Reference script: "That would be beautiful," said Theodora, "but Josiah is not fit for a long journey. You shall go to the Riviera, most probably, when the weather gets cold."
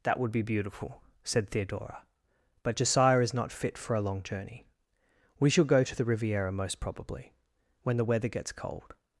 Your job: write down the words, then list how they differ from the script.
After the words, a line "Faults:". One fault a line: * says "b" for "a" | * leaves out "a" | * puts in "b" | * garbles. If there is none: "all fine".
"That would be beautiful," said Theodora, "but Josiah is not fit for a long journey. We shall go to the Riviera, most probably, when the weather gets cold."
Faults:
* says "We" for "You"